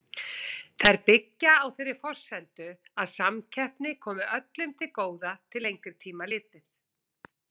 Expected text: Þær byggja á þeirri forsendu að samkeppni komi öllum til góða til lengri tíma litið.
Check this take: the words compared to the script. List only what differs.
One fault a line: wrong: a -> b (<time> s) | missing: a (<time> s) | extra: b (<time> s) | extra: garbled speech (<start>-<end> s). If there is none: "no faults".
no faults